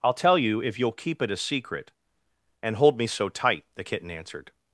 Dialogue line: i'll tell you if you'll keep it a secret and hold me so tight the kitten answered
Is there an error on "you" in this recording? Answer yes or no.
no